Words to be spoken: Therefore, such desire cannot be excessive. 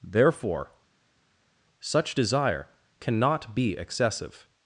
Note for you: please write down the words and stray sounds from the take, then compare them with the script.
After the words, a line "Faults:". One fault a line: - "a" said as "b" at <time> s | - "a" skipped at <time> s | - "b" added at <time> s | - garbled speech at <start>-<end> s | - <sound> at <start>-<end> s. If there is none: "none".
Therefore, such desire cannot be excessive.
Faults:
none